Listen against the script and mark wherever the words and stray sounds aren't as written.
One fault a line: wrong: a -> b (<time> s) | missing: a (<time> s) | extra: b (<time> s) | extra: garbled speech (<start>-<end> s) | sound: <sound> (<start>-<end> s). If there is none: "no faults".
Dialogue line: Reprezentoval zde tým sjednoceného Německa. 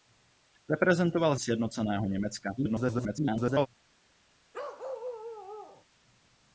missing: zde tým (1.4 s)
extra: garbled speech (2.6-3.7 s)
sound: bark (4.5-5.8 s)